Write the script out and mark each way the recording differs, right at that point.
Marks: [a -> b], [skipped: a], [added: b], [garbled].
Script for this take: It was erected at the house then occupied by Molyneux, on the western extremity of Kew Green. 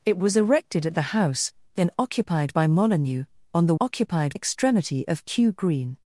It was erected at the house then occupied by Molyneux, on the [western -> occupied] extremity of Kew Green.